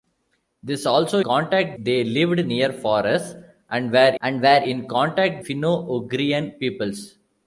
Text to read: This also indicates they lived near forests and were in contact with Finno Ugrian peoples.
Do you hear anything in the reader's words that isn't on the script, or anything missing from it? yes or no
yes